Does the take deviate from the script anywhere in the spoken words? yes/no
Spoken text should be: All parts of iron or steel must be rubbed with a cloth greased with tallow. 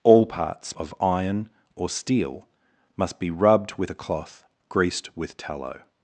no